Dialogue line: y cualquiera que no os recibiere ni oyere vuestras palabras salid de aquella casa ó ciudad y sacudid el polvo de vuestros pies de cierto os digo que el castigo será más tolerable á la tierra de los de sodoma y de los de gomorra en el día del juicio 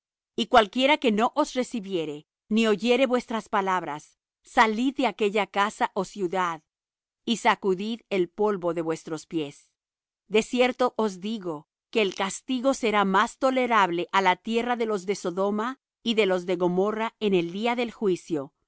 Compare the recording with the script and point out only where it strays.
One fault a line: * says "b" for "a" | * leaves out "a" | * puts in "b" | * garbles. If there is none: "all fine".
all fine